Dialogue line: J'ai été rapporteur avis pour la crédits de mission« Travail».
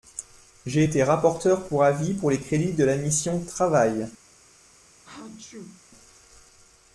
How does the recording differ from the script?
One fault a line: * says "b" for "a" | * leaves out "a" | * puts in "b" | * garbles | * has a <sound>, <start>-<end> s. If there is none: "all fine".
* puts in "pour"
* says "les" for "la"
* puts in "la"
* has a sneeze, 5.0-5.8 s